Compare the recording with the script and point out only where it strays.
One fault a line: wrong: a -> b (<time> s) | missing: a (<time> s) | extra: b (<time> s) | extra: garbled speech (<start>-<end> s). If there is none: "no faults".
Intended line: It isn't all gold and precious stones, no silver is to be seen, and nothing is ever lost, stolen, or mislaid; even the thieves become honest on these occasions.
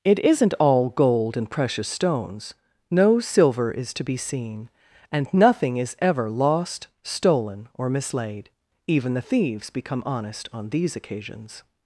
no faults